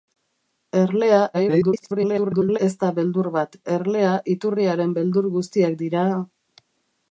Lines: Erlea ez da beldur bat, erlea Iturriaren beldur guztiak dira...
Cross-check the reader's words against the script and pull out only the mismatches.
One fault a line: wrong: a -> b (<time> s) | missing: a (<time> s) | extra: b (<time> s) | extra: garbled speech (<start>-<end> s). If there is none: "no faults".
extra: garbled speech (1.3-2.6 s)